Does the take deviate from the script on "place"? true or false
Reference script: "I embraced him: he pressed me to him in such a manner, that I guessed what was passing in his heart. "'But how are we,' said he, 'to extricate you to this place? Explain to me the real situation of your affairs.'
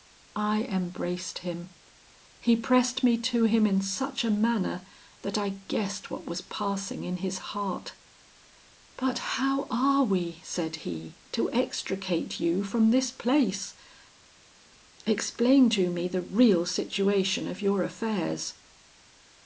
false